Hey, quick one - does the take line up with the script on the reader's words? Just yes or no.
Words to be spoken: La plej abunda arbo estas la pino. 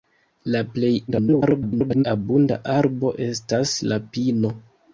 no